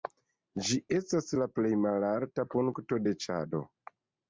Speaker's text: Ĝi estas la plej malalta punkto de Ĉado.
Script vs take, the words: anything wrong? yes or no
no